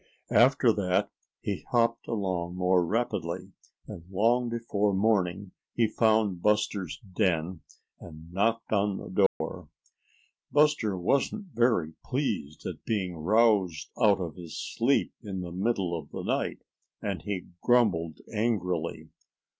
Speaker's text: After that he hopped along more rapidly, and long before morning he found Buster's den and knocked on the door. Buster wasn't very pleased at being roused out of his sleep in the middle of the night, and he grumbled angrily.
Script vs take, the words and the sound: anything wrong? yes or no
yes